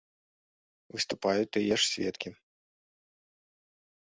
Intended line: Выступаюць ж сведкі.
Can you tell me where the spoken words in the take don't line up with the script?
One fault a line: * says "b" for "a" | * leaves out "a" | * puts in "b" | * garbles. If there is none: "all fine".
* puts in "тыя"